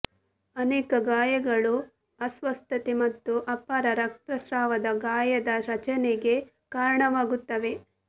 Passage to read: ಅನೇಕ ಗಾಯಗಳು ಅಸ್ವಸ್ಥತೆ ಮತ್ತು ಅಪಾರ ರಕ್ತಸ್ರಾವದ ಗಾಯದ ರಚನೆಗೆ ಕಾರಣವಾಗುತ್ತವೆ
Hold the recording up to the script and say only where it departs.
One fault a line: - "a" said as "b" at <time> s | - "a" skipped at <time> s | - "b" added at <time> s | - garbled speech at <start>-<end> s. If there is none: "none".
none